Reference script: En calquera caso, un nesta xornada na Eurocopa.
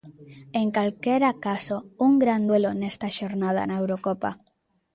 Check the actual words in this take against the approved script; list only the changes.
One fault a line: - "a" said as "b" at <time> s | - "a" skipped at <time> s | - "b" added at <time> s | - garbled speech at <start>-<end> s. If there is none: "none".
- "gran duelo" added at 2.2 s